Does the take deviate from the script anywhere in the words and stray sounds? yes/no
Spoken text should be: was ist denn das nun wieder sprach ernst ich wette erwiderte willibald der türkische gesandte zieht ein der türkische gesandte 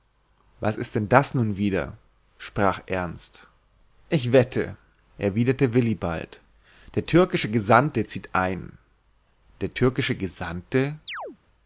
yes